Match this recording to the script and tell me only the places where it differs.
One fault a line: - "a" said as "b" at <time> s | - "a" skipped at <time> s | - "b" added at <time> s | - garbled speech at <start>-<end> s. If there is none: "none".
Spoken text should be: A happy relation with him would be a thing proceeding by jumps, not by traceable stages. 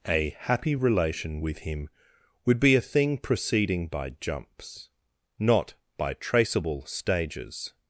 none